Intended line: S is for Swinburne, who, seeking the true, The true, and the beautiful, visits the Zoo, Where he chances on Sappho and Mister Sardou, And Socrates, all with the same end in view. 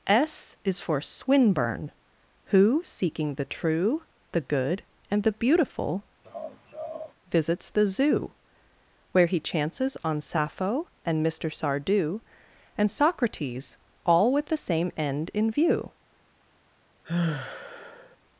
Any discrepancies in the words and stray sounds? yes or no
yes